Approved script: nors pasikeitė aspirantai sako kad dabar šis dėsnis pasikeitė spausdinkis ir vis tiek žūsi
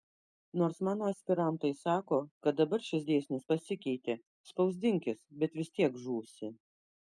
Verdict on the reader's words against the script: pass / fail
fail